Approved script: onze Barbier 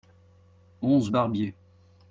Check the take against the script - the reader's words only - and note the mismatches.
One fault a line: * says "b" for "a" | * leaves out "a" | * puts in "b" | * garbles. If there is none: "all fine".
all fine